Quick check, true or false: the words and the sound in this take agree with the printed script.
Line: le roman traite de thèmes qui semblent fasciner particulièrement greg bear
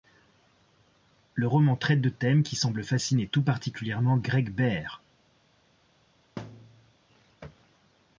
false